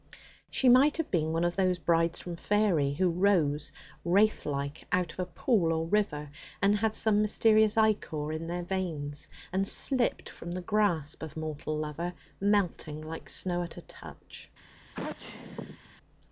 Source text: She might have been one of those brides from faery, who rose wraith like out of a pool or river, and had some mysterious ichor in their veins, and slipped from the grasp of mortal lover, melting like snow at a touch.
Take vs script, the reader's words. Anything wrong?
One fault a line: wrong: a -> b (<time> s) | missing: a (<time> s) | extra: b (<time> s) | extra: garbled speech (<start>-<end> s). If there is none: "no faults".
no faults